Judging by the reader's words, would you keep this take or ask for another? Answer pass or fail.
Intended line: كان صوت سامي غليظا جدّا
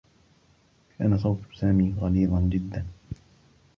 pass